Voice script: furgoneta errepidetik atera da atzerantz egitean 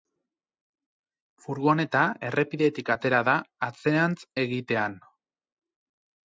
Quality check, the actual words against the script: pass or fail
pass